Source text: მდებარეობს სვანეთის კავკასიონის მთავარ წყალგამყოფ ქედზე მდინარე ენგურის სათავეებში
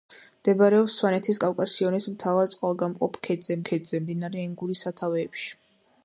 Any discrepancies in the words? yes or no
yes